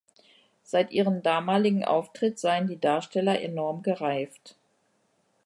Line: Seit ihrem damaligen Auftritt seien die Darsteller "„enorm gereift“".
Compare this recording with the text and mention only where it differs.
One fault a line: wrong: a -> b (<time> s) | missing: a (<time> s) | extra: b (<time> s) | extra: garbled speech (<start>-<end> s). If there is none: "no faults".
no faults